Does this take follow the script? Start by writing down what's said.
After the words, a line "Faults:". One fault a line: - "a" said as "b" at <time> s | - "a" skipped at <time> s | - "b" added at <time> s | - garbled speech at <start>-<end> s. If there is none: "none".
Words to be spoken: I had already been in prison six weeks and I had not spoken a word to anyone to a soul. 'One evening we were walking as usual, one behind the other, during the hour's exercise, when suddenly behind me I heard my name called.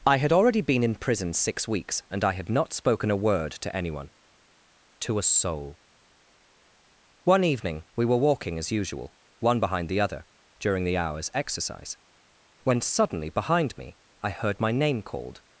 I had already been in prison six weeks and I had not spoken a word to anyone to a soul. 'One evening we were walking as usual, one behind the other, during the hour's exercise, when suddenly behind me I heard my name called.
Faults:
none